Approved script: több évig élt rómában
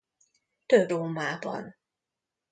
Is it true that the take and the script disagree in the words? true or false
true